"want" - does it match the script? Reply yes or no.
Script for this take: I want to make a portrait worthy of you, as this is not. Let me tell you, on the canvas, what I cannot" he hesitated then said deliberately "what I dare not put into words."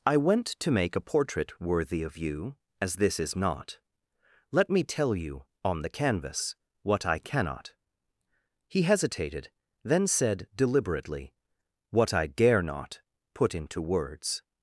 no